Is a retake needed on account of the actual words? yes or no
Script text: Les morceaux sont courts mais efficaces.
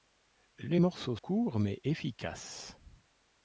yes